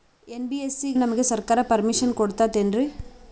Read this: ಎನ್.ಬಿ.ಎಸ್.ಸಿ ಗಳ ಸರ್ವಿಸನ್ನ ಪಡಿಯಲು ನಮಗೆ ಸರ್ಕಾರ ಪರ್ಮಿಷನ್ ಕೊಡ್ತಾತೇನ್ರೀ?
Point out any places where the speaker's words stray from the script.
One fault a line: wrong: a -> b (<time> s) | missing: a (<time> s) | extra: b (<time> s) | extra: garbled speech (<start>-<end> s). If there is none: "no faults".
missing: ಗಳ ಸರ್ವಿಸನ್ನ ಪಡಿಯಲು (0.9 s)